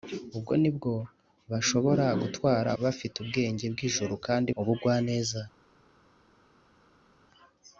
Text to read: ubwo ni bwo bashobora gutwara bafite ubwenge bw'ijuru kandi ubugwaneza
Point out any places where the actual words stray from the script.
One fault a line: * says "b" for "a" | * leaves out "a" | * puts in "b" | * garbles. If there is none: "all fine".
all fine